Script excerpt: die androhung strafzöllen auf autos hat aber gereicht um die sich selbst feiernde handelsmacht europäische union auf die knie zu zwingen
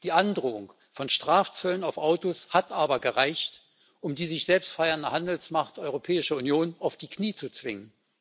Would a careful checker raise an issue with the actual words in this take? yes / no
yes